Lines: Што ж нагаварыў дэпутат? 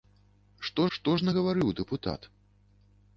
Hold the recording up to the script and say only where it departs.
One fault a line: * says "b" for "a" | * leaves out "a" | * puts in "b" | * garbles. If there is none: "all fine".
* puts in "што"